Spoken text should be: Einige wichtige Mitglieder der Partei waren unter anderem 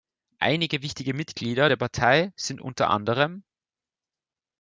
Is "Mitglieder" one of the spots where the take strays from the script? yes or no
no